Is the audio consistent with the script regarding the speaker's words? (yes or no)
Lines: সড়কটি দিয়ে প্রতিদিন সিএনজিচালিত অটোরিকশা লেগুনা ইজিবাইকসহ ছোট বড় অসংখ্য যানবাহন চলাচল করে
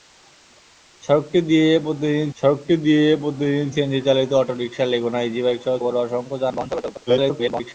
no